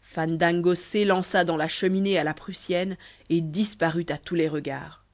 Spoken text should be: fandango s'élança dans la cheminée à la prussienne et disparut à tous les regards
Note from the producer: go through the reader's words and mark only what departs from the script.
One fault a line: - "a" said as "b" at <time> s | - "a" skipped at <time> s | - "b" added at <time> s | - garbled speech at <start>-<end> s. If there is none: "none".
none